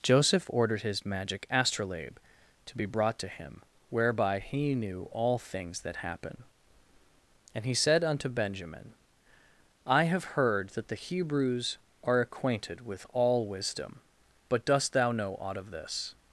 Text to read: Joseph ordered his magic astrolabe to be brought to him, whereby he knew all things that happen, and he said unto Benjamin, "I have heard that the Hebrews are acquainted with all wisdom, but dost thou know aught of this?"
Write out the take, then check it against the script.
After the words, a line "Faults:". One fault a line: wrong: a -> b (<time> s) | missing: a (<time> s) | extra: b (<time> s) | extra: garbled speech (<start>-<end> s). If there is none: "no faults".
Joseph ordered his magic astrolabe to be brought to him, whereby he knew all things that happen, and he said unto Benjamin, "I have heard that the Hebrews are acquainted with all wisdom, but dost thou know aught of this?"
Faults:
no faults